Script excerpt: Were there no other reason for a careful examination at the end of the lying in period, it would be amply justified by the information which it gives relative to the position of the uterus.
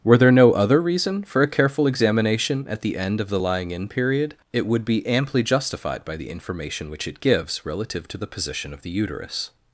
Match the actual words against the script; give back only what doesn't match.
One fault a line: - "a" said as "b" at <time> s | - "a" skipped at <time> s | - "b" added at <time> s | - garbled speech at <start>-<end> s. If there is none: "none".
none